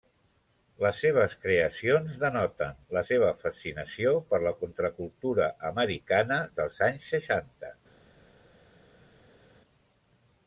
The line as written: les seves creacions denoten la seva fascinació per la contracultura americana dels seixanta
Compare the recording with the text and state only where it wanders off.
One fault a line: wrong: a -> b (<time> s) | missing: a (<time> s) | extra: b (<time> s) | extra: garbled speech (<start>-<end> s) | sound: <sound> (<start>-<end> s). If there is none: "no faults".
extra: anys (6.9 s)